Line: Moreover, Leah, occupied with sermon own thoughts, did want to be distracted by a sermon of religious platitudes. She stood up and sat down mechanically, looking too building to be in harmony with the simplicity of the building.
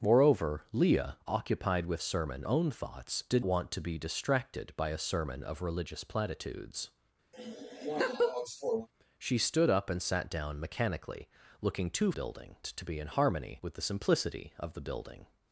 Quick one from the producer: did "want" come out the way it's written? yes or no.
yes